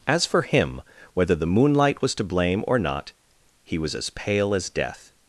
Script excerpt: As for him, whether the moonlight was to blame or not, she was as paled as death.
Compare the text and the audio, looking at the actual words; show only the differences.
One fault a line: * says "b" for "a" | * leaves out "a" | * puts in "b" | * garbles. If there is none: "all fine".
* says "he" for "she"
* says "pale" for "paled"